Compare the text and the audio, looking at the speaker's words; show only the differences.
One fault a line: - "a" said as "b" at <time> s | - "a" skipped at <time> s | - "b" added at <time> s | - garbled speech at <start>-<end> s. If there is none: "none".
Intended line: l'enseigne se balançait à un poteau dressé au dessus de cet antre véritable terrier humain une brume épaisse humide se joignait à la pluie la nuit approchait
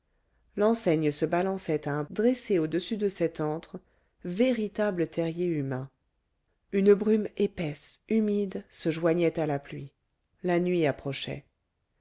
- "poteau" skipped at 2.0 s